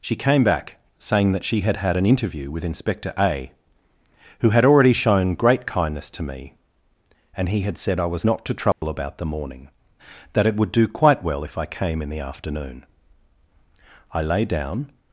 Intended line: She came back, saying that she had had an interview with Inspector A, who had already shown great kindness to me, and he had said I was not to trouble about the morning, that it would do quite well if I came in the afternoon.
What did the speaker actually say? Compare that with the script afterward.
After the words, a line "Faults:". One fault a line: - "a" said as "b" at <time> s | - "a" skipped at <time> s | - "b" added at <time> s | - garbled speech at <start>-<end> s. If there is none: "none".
She came back, saying that she had had an interview with Inspector A, who had already shown great kindness to me, and he had said I was not to trouble about the morning, that it would do quite well if I came in the afternoon. I lay down
Faults:
- "I lay down" added at 14.1 s